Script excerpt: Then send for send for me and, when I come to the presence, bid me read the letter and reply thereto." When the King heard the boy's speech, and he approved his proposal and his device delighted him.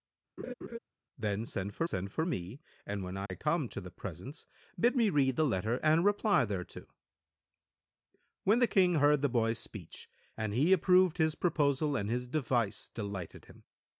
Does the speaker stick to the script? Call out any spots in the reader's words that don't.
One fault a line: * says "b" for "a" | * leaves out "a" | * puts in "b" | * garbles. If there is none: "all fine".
all fine